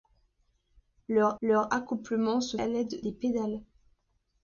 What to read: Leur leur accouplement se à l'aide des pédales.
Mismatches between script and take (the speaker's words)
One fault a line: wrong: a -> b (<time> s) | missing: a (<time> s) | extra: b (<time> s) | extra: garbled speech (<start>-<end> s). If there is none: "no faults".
no faults